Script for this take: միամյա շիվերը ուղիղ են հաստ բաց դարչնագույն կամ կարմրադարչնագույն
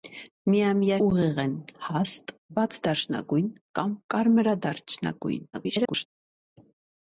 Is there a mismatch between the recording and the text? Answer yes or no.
yes